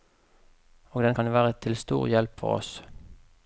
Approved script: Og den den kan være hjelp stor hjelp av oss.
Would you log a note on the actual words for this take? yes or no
yes